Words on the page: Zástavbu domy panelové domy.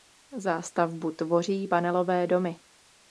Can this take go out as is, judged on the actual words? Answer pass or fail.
fail